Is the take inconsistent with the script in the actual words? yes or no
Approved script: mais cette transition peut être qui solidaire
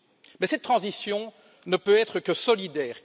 yes